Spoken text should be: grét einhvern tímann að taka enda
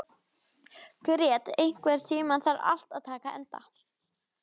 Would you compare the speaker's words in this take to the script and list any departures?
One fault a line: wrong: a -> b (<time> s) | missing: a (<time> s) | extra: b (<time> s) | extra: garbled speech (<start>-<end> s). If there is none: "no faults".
extra: þarf allt (2.5 s)